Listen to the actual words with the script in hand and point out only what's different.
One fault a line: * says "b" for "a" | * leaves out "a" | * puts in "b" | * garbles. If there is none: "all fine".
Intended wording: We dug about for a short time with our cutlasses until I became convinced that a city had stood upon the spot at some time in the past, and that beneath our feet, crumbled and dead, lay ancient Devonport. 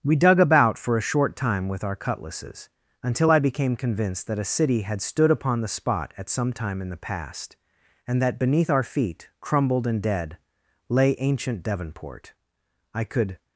* puts in "I could"